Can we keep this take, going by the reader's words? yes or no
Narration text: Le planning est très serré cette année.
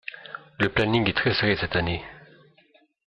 yes